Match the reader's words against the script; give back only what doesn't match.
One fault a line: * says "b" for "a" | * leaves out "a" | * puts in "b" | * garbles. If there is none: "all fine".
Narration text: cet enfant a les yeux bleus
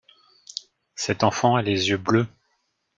all fine